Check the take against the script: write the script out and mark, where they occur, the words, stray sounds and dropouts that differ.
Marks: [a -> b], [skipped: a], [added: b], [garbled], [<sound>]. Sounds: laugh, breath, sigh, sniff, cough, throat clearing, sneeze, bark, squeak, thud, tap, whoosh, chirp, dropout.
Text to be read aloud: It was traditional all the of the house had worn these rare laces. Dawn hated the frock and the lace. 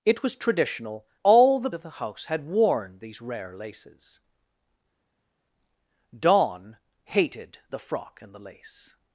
It was traditional all the of the house had worn these rare laces. Dawn hated the frock and the lace.